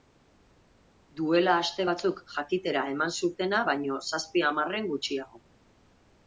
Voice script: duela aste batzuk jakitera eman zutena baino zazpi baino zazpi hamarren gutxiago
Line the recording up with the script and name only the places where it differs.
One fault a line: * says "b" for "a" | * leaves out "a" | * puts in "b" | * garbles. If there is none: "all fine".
* leaves out "baino zazpi"